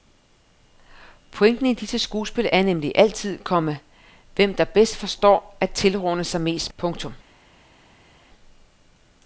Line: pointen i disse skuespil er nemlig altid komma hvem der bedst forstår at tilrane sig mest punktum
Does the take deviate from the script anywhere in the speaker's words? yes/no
no